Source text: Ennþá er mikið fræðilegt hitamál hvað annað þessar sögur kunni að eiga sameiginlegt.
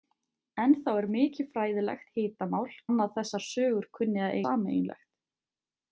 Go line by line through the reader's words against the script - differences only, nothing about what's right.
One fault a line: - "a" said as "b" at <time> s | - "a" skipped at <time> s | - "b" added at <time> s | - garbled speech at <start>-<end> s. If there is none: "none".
- "hvað" skipped at 2.6 s
- "eiga" skipped at 4.4 s